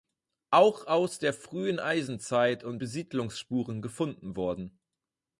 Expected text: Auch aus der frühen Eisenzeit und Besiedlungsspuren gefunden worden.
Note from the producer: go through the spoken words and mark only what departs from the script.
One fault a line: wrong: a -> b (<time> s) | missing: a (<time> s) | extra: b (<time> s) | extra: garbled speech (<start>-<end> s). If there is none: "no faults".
no faults